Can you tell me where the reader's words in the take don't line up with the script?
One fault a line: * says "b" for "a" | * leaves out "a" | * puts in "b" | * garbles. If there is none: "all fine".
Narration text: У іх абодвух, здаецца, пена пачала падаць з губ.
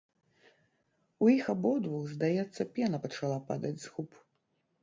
all fine